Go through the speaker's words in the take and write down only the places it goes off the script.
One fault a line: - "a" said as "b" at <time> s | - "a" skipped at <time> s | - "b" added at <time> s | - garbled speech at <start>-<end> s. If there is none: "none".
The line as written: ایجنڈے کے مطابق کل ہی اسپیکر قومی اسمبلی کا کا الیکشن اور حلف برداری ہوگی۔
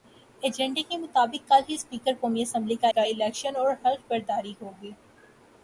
none